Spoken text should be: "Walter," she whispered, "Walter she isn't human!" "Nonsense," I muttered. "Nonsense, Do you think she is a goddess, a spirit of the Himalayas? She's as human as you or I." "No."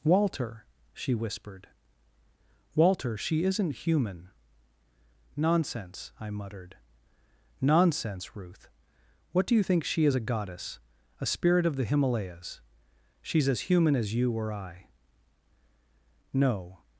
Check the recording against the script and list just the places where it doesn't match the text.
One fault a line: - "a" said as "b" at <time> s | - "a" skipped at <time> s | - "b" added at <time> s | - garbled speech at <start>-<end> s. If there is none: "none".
- "Ruth What" added at 8.3 s